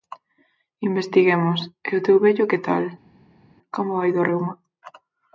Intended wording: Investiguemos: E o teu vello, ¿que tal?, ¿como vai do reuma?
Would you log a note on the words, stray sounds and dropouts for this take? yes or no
no